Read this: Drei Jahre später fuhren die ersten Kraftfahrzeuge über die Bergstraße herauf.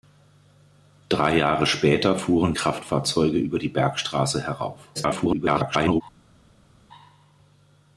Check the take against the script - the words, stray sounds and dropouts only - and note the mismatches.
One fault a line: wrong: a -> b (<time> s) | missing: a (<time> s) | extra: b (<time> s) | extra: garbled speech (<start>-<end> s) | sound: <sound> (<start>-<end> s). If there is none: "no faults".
missing: die ersten (2.5 s)
extra: garbled speech (4.9-6.0 s)